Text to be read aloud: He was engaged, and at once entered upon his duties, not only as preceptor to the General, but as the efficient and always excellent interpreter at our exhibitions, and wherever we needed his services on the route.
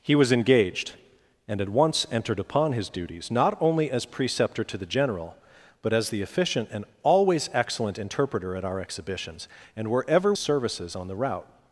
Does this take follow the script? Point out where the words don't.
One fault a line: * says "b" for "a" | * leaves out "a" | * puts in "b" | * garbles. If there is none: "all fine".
* leaves out "we needed his"